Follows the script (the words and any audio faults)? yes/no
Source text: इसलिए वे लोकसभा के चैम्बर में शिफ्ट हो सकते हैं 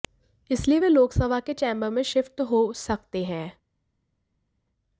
yes